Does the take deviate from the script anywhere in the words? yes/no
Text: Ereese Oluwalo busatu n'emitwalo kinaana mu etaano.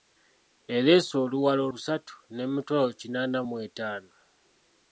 no